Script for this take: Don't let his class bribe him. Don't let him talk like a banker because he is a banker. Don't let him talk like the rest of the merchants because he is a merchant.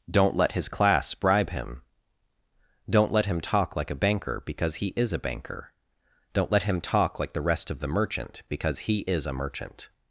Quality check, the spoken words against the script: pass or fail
fail